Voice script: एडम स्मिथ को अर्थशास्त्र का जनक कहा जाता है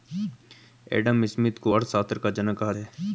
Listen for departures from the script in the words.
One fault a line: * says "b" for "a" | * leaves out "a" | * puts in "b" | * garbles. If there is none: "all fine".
* leaves out "जाता"